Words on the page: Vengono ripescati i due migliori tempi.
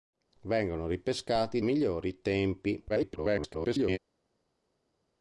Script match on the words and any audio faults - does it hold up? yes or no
no